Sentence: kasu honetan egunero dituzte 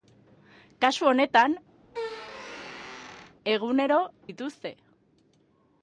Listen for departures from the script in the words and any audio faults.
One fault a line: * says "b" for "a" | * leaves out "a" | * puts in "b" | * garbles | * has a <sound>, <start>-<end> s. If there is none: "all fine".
* has a squeak, 1.8-3.4 s